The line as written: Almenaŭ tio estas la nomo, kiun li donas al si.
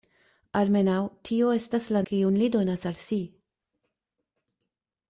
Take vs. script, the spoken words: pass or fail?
fail